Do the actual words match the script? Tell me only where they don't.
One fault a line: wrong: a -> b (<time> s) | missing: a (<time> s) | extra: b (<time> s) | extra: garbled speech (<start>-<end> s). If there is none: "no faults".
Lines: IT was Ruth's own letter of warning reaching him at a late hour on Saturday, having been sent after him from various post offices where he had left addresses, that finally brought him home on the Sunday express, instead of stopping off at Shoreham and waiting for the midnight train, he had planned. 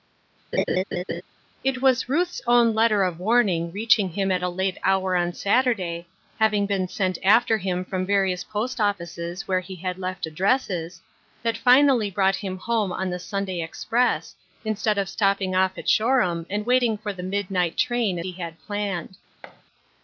no faults